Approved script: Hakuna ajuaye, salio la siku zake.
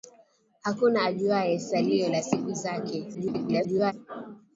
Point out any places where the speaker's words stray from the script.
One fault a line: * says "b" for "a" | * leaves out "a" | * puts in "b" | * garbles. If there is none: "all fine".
* garbles